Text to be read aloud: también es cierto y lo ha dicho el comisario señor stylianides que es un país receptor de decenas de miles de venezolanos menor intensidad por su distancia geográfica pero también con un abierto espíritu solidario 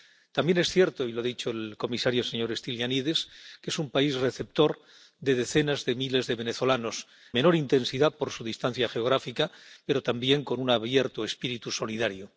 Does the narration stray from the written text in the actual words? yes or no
no